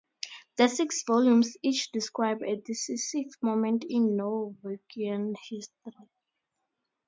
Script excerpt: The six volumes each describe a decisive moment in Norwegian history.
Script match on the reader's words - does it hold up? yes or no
yes